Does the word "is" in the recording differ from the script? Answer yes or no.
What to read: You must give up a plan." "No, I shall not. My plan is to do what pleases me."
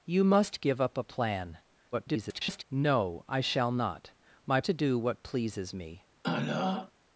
yes